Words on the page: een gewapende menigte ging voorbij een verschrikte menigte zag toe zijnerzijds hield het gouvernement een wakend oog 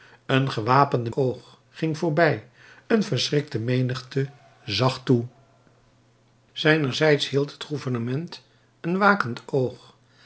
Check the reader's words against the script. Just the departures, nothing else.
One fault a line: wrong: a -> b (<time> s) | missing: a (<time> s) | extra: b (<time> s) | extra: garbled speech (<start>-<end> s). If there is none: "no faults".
wrong: menigte -> oog (1.1 s)